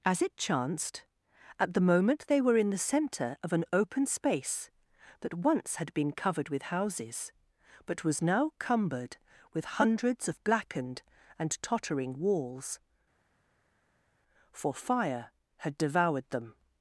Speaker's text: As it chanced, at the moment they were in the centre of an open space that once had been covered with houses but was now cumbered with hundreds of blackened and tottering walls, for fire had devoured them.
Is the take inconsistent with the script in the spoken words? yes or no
no